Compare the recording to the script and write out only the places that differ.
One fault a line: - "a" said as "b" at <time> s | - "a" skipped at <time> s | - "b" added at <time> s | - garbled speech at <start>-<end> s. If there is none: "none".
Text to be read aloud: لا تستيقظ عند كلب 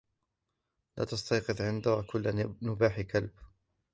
- "كل نباح" added at 2.1 s